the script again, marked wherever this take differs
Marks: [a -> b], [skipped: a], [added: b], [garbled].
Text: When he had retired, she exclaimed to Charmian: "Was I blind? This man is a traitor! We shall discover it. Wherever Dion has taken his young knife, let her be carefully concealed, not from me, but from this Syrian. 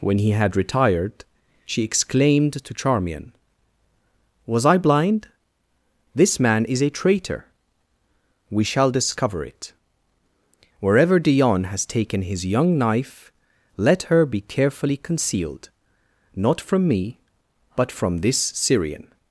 When he had retired, she exclaimed to Charmian: "Was I blind? This man is a traitor! We shall discover it. Wherever Dion has taken his young knife, let her be carefully concealed, not from me, but from this Syrian.